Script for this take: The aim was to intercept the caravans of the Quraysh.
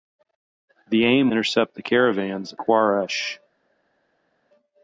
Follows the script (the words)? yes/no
no